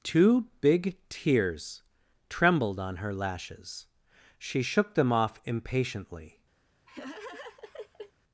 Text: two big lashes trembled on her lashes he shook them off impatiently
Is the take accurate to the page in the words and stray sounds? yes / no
no